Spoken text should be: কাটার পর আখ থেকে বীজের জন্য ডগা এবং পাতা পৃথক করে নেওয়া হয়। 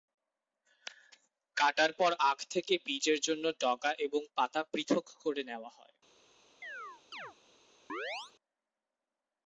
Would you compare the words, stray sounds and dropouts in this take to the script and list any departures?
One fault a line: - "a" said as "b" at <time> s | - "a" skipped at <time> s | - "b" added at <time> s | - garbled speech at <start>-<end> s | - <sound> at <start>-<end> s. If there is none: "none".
- chirp at 6.6-7.3 s
- chirp at 7.9-8.3 s